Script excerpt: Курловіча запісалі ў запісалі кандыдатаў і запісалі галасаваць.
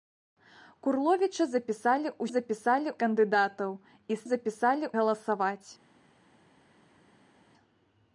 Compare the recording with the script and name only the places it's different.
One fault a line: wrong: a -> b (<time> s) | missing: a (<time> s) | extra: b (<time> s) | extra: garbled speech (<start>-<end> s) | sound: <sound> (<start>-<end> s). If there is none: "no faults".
no faults